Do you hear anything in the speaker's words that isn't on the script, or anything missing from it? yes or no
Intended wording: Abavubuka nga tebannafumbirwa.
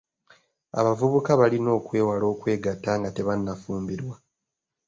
yes